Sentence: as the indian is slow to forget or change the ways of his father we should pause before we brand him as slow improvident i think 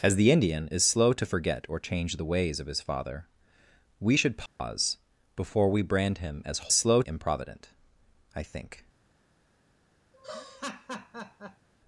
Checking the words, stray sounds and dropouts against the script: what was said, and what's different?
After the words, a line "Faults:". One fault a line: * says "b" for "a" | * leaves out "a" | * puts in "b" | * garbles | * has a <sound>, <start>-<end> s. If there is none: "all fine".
as the indian is slow to forget or change the ways of his father we should pause before we brand him as slow improvident i think
Faults:
* has a dropout, 4.5-4.6 s
* has a laugh, 10.1-11.7 s